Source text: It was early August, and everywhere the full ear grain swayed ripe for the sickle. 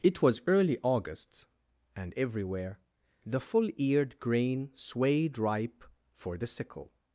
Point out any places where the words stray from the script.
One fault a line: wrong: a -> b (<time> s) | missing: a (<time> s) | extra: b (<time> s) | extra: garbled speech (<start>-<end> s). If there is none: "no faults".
wrong: ear -> eared (3.8 s)